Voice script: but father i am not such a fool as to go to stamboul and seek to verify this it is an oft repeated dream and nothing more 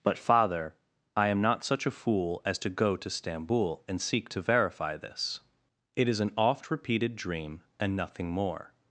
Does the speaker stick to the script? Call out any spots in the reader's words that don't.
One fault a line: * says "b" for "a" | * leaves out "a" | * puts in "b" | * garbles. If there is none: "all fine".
all fine